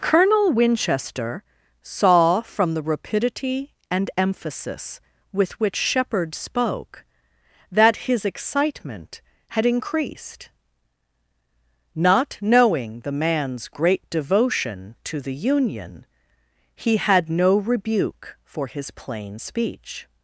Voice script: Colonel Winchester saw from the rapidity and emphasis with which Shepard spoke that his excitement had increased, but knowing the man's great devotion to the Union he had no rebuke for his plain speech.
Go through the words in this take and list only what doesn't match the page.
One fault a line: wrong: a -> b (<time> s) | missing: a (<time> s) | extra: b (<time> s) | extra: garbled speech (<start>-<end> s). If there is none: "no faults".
wrong: but -> not (11.9 s)